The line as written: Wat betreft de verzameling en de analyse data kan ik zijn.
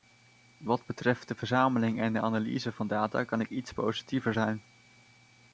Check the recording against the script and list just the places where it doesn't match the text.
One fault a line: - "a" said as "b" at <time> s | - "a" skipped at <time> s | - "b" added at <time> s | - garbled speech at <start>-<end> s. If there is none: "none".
- "van" added at 2.7 s
- "iets positiever" added at 3.5 s